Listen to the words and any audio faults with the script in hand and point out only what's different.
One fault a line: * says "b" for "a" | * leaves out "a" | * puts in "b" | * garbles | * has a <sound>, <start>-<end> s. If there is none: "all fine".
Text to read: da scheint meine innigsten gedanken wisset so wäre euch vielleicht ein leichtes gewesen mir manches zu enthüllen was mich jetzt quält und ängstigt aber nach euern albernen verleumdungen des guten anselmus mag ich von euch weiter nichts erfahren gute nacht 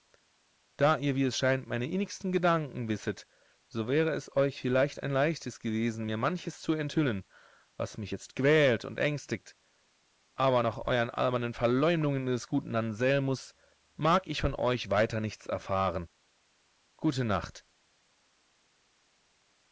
* puts in "ihr wie es"
* puts in "es"